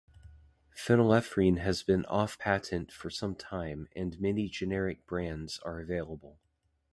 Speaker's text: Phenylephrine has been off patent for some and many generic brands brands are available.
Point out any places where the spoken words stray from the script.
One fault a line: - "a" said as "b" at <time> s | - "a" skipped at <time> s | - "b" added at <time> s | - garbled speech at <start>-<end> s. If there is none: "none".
- "time" added at 3.3 s
- "brands" skipped at 5.6 s